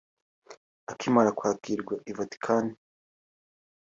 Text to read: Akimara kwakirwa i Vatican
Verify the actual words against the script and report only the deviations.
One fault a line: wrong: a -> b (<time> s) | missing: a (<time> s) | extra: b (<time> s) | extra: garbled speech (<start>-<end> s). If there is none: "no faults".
no faults